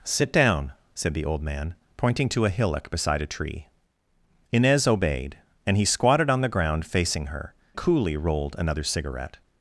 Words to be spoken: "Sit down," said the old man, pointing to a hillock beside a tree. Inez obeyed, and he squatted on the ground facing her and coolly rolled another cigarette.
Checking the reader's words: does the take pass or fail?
fail